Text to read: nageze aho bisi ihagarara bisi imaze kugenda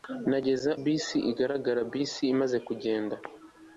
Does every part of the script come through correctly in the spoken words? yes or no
no